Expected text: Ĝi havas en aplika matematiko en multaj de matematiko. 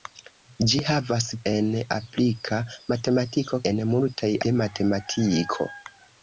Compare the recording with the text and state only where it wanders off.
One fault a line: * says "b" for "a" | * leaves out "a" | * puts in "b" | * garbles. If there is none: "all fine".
all fine